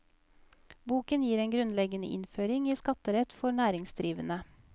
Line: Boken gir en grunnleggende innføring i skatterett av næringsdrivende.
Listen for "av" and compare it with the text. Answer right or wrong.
wrong